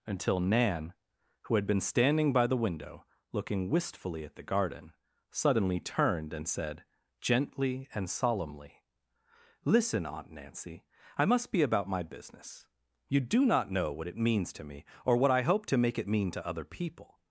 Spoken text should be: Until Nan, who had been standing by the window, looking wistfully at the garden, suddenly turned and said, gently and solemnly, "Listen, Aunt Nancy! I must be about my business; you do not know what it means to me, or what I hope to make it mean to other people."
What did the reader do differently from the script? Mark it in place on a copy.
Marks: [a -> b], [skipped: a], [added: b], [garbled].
Until Nan, who had been standing by the window, looking wistfully at the garden, suddenly turned and said, gently and solemnly, "Listen, Aunt Nancy! I must be about my business; you do not know what it means to me, or what I hope to make it mean to other people."